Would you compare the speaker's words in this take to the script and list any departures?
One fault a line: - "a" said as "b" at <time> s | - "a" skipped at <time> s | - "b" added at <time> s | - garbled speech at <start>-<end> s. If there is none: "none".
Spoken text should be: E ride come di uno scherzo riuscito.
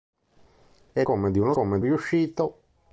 - "ride" skipped at 1.0 s
- "scherzo" said as "come" at 1.5 s